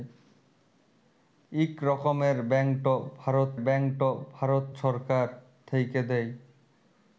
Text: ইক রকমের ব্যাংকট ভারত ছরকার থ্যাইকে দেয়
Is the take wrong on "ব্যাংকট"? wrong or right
right